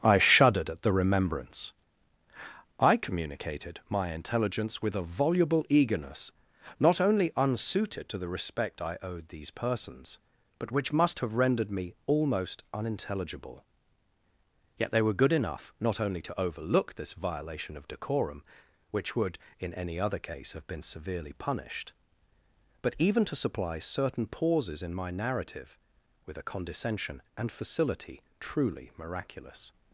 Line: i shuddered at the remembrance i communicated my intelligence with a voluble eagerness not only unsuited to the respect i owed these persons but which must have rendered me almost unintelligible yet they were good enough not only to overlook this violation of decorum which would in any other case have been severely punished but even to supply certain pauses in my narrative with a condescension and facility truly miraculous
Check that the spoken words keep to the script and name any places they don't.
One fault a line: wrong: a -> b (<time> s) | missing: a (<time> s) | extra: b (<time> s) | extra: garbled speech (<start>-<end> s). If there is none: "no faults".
no faults